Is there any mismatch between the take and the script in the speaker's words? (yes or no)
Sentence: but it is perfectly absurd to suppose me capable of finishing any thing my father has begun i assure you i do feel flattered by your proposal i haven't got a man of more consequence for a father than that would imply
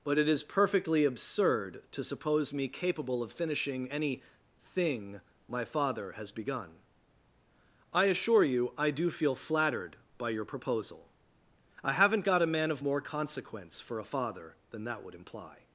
no